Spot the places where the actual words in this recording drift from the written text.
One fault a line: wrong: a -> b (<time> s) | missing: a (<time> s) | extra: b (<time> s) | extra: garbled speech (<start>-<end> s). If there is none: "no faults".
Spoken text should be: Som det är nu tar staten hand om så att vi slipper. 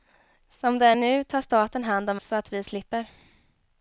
no faults